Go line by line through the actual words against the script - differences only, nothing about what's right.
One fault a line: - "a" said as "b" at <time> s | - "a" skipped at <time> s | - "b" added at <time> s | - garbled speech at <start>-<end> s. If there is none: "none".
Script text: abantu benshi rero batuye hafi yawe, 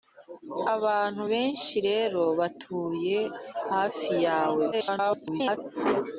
- garbled speech at 4.7-5.6 s